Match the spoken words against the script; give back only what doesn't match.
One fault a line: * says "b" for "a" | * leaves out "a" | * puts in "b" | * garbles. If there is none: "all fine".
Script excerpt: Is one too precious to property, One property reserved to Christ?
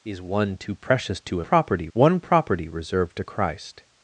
all fine